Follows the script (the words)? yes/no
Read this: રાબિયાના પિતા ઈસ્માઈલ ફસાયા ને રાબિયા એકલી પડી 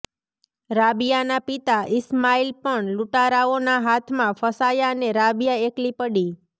no